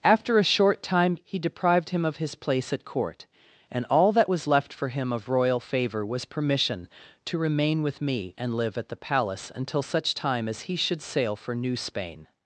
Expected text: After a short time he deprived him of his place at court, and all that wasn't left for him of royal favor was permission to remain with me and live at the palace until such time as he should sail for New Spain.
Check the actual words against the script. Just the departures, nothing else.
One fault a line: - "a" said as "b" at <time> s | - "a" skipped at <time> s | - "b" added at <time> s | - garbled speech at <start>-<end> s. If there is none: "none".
- "wasn't" said as "was" at 4.3 s